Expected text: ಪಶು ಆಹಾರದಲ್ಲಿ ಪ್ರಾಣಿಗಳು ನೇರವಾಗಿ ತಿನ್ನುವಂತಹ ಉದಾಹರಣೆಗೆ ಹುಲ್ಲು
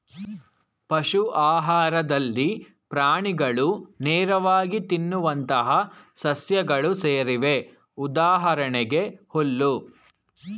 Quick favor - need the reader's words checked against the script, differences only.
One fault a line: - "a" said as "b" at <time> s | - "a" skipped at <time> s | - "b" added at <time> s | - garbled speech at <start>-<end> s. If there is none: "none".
- "ಸಸ್ಯಗಳು ಸೇರಿವೆ" added at 6.2 s